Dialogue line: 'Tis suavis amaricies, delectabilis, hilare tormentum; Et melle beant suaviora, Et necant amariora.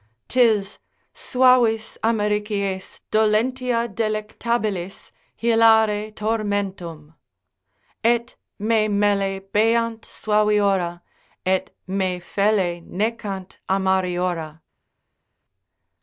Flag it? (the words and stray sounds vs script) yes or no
yes